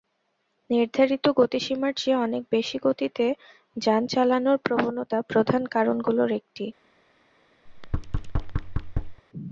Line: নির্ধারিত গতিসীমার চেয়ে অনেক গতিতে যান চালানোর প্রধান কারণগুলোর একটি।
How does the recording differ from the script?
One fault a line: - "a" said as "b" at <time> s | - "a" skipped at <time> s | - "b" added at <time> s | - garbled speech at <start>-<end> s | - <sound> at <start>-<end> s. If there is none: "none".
- "বেশি" added at 2.5 s
- "প্রবণতা" added at 4.7 s
- thud at 7.7-9.2 s